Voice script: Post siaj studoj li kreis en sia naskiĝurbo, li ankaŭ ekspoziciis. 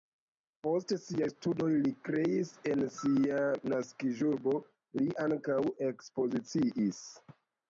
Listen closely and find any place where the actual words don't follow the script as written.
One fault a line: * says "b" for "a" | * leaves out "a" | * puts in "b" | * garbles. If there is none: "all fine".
all fine